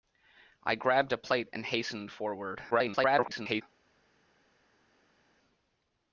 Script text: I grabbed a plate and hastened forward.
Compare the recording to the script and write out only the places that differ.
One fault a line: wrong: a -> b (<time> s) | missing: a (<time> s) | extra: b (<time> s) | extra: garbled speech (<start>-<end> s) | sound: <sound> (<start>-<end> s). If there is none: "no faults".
extra: garbled speech (2.7-3.6 s)